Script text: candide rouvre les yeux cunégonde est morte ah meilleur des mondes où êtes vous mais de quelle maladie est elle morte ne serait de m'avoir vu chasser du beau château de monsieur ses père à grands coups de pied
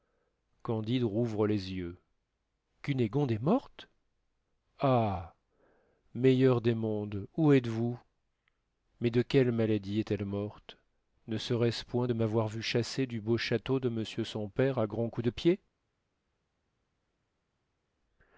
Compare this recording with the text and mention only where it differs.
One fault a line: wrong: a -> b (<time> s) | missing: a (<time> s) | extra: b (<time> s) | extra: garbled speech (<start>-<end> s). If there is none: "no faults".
extra: ce point (11.7 s)
wrong: ses -> son (14.2 s)